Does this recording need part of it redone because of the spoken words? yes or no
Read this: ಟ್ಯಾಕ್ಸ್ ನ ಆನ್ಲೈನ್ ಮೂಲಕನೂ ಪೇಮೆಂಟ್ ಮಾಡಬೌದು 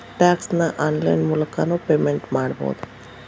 no